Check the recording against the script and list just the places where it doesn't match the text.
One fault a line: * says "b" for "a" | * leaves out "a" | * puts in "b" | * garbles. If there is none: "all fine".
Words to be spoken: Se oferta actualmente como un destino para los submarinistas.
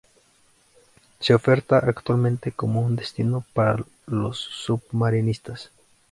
all fine